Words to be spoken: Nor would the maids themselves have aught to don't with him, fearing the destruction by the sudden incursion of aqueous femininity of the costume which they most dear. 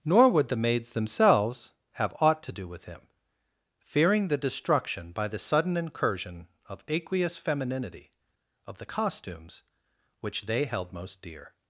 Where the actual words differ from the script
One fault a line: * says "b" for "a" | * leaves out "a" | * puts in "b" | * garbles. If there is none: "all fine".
* says "do" for "don't"
* says "costumes" for "costume"
* puts in "held"